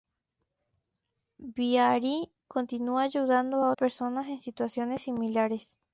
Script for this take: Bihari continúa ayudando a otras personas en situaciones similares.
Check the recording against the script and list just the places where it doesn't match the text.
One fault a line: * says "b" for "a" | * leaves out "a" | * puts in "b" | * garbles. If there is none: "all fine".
* leaves out "otras"